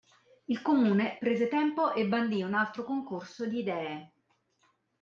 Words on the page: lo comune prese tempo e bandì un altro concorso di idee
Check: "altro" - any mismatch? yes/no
no